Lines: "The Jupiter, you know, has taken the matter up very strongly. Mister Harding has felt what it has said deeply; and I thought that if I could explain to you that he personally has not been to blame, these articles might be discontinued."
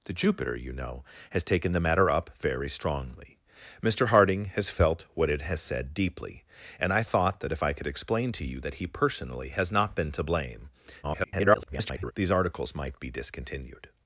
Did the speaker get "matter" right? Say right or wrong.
right